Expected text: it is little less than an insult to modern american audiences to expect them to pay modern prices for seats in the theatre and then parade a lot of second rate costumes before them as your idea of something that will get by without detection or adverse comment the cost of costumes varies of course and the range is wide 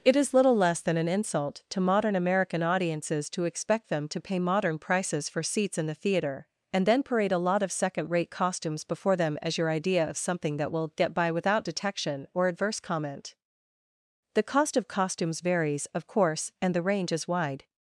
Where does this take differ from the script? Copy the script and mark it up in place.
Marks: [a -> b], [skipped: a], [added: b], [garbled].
it is little less than an insult to modern american audiences to expect them to pay modern prices for seats in the theatre and then parade a lot of second rate costumes before them as your idea of something that will get by without detection or adverse comment the cost of costumes varies of course and the range is wide